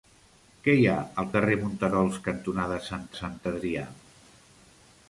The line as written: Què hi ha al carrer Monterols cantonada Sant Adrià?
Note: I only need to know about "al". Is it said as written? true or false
true